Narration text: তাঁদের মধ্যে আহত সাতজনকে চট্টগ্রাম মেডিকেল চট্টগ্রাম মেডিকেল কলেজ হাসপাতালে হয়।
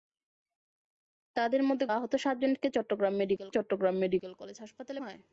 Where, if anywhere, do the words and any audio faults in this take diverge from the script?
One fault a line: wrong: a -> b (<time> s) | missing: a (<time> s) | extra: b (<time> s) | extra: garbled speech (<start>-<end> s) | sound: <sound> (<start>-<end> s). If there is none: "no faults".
no faults